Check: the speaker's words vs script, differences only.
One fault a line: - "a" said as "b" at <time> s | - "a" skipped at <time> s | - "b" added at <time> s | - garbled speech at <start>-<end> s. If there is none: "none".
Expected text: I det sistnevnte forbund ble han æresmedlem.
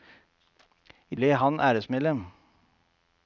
- "det sistnevnte forbund" skipped at 1.1 s